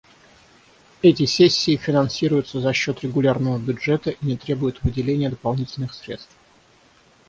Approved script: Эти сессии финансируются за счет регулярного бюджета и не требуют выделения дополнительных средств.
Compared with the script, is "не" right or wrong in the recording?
right